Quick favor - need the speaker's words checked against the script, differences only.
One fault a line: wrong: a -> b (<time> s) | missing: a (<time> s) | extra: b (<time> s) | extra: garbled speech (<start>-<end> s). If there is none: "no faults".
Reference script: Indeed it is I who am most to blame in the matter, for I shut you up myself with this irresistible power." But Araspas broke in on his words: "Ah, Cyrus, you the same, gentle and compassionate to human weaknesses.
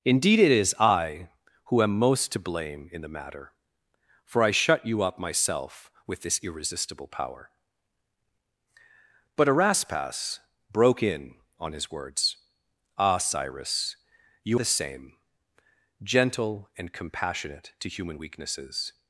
no faults